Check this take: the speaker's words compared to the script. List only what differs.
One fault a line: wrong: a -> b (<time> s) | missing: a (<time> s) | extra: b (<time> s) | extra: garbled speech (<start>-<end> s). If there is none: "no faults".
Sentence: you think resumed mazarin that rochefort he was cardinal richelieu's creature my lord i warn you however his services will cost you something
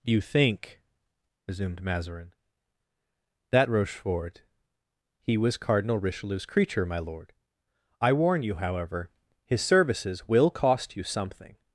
no faults